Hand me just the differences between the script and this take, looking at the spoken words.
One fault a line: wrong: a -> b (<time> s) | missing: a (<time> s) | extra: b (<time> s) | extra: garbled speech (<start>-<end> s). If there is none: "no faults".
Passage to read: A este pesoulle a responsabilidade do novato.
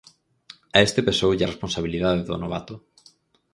no faults